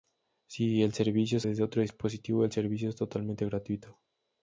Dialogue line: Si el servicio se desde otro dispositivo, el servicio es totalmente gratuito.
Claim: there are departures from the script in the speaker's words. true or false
false